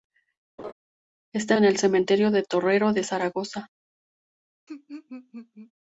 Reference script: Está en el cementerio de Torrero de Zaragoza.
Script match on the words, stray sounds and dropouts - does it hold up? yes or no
no